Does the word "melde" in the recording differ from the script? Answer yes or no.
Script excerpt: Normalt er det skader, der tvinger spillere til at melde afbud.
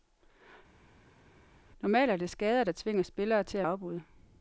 yes